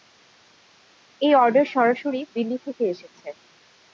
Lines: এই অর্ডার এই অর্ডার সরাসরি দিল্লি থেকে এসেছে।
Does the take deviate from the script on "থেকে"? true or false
false